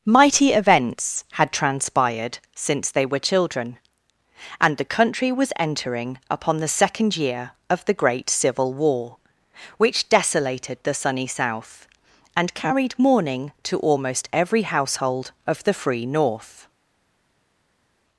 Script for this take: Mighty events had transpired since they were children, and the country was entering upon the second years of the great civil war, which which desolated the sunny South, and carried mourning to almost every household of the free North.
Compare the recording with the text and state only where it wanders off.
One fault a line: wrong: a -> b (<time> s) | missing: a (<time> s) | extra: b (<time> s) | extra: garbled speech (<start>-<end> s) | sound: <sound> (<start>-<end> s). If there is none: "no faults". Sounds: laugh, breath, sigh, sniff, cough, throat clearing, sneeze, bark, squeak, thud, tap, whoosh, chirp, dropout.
wrong: years -> year (7.2 s)
missing: which (10.1 s)